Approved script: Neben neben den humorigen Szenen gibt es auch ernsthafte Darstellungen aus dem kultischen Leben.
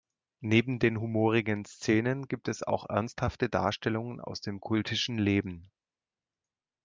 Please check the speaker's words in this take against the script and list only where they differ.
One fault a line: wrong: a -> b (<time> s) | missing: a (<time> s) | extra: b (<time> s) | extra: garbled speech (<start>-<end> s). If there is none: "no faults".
missing: neben (0.8 s)